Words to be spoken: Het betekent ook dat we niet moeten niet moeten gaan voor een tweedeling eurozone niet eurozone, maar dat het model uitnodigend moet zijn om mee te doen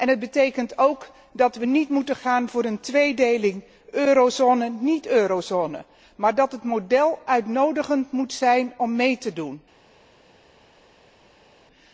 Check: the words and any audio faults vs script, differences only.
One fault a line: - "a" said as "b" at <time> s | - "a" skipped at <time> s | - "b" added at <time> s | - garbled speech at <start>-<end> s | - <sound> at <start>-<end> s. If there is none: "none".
- "niet moeten" skipped at 2.2 s